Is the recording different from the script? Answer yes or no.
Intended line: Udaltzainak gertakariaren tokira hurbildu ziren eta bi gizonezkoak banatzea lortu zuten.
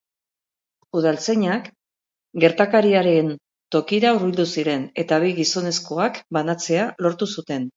no